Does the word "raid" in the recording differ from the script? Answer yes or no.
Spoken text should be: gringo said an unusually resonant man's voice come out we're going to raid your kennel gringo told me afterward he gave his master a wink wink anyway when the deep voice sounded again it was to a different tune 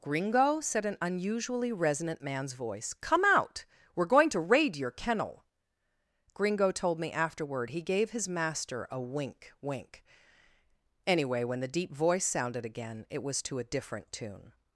no